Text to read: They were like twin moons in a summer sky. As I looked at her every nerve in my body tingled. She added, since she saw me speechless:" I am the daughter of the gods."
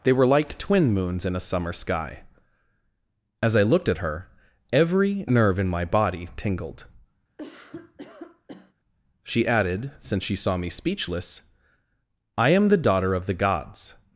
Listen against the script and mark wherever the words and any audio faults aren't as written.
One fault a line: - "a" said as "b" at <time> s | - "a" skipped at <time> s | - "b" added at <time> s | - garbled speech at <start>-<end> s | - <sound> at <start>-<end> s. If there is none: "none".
- cough at 7.4-8.7 s